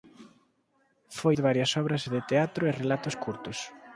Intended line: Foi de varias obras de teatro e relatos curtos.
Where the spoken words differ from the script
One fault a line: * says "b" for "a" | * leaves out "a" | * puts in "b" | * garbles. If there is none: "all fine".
all fine